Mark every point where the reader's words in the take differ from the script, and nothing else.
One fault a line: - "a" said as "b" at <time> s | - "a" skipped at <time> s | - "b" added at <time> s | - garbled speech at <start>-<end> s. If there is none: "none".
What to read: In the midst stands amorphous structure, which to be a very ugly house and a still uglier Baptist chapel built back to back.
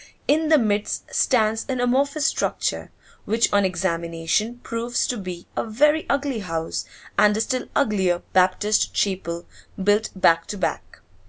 - "an" added at 1.7 s
- "on examination proves" added at 3.5 s